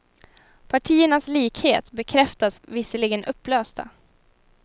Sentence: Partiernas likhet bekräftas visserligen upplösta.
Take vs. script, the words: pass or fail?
pass